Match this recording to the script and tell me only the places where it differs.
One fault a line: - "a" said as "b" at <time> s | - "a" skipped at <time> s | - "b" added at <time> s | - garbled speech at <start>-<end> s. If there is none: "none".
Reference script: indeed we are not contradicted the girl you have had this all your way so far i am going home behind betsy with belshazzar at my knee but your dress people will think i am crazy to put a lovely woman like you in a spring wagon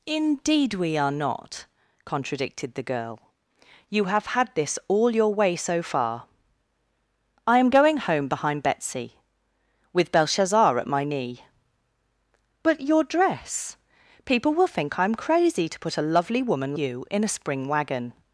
- "like" skipped at 16.8 s